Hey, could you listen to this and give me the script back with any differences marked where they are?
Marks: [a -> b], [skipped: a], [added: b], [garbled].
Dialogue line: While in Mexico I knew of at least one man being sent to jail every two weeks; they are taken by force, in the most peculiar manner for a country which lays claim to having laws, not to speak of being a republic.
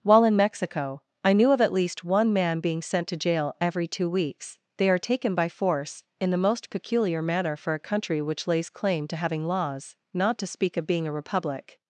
While in Mexico I knew of at least one man being sent to jail every two weeks; they are taken by force, in the most peculiar manner for a country which lays claim to having laws, not to speak of being a republic.